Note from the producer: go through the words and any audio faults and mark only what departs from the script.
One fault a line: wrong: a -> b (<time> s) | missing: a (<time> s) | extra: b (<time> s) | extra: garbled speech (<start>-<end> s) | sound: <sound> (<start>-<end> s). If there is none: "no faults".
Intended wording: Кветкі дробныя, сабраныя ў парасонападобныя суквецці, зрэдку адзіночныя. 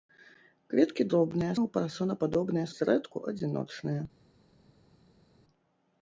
missing: сабраныя (1.5 s)
missing: суквецці (2.7 s)